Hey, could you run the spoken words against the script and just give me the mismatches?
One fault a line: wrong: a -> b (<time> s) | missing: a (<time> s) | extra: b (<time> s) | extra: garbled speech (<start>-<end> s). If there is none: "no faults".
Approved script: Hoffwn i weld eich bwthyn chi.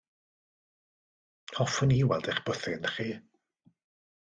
no faults